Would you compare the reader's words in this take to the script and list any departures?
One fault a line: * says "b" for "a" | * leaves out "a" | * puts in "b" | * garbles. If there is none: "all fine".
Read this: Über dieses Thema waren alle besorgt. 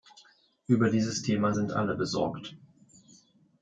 * says "sind" for "waren"